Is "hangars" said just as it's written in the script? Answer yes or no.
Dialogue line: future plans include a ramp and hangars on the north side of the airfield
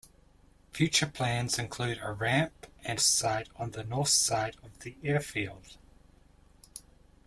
no